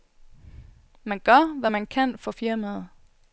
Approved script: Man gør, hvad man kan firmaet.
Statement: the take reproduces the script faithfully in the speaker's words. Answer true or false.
false